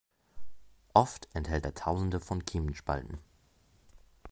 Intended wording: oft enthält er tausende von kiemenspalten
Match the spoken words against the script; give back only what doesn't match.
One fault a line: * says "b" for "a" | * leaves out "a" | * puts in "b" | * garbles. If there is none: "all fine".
all fine